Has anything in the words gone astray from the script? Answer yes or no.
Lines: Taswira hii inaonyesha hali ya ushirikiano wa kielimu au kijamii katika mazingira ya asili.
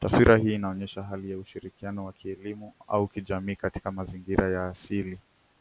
no